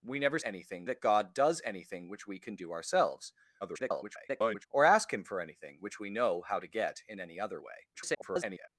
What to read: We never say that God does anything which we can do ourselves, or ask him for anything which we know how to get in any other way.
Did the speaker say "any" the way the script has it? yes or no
yes